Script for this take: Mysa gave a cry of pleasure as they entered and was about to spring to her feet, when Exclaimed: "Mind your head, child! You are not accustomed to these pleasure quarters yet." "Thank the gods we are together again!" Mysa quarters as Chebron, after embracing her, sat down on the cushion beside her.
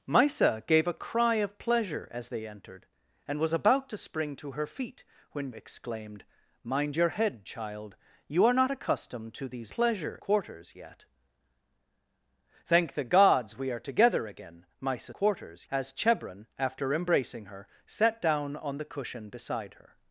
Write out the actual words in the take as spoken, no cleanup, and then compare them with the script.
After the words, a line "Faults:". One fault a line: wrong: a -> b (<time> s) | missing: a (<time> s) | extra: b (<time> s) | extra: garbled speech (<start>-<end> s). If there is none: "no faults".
Mysa gave a cry of pleasure as they entered and was about to spring to her feet, when Exclaimed: "Mind your head, child! You are not accustomed to these pleasure quarters yet." "Thank the gods we are together again!" Mysa quarters as Chebron, after embracing her, sat down on the cushion beside her.
Faults:
no faults